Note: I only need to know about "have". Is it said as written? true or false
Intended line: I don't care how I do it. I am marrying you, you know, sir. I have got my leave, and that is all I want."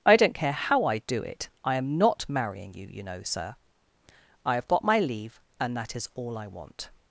true